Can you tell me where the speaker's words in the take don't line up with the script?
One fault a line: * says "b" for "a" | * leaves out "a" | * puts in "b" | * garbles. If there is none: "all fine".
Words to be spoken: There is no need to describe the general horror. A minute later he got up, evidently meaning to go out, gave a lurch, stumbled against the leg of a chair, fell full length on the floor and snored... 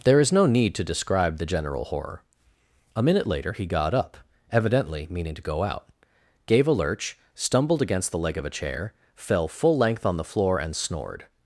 all fine